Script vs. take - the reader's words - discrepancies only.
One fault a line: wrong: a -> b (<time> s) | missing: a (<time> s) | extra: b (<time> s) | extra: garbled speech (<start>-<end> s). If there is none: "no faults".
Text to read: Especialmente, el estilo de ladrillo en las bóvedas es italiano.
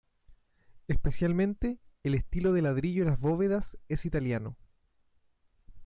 no faults